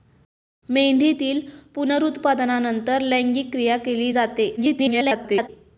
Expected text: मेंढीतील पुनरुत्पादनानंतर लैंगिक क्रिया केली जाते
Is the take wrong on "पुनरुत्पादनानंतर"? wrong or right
right